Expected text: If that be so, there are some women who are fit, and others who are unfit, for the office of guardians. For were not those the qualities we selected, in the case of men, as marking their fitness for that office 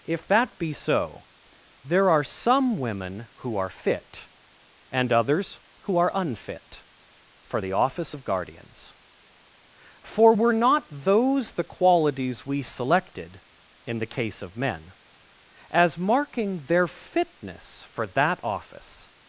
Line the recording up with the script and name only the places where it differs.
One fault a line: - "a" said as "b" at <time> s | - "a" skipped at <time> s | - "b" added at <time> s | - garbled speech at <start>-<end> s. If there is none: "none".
none